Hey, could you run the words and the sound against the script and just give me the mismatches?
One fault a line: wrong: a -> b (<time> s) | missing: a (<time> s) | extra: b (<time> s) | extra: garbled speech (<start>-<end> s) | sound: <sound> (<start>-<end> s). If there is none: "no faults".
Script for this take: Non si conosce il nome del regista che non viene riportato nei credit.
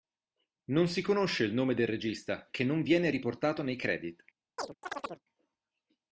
sound: chirp (4.6-5.2 s)